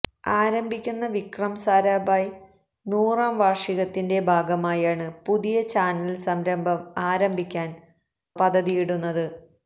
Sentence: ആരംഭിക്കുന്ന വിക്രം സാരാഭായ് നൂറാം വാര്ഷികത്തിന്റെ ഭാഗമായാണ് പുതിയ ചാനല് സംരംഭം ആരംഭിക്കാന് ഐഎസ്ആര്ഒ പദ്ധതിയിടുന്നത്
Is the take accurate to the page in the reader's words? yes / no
no